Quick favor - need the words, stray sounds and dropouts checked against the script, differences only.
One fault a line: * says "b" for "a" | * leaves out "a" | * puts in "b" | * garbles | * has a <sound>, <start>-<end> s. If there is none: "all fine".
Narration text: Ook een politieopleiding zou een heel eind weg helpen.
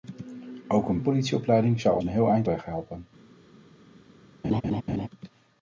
* has a laugh, 4.4-5.1 s